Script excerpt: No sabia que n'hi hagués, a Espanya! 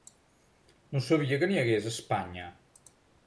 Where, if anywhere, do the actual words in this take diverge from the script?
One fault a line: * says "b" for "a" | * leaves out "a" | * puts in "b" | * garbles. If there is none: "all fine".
all fine